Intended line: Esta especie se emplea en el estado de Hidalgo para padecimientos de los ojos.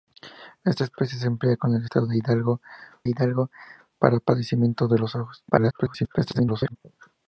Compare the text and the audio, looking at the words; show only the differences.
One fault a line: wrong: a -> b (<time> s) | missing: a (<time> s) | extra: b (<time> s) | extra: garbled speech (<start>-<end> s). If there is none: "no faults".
extra: Hidalgo (3.1 s)
extra: garbled speech (5.5-6.8 s)